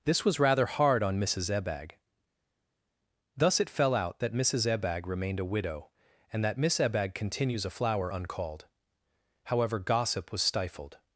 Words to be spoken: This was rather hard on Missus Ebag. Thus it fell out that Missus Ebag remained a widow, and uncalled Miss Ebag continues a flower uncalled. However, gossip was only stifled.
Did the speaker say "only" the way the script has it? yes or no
no